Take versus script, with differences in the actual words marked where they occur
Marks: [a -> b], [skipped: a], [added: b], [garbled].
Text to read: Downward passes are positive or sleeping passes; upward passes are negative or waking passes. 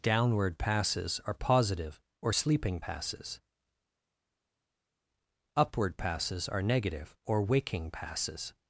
Downward passes are positive or sleeping passes; upward passes are negative or waking passes.